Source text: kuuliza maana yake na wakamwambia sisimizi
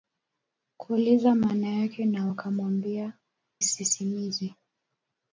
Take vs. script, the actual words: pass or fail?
pass